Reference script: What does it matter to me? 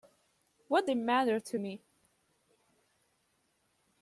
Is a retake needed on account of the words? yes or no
yes